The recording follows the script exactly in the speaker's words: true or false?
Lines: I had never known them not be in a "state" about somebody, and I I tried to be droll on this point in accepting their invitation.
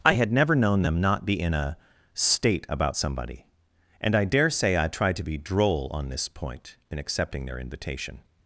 false